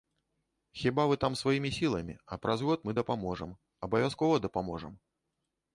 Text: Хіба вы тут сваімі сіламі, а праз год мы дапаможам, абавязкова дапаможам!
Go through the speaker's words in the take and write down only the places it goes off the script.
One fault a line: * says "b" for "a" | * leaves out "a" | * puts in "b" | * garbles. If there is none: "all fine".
* says "там" for "тут"